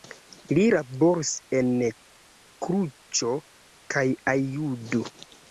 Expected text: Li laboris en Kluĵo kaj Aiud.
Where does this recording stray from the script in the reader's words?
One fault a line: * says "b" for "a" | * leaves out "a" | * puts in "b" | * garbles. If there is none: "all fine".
all fine